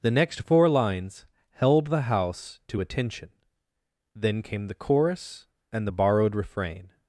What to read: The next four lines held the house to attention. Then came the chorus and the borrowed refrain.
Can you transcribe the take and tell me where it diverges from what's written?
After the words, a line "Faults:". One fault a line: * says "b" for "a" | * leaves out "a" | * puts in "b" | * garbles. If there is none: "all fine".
The next four lines held the house to attention. Then came the chorus and the borrowed refrain.
Faults:
all fine